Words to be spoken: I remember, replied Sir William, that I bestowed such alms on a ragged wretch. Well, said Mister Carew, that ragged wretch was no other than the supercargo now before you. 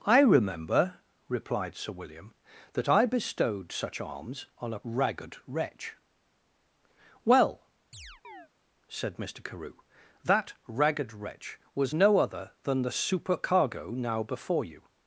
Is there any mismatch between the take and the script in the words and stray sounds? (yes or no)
yes